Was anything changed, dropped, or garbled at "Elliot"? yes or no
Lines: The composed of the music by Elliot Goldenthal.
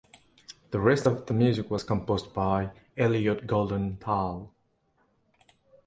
no